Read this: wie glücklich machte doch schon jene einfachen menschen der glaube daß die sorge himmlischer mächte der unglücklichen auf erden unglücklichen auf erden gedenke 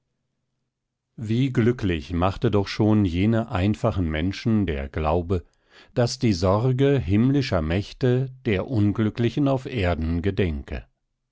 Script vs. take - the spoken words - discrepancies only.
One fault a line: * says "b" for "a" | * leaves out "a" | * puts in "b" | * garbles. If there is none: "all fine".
* leaves out "unglücklichen auf erden"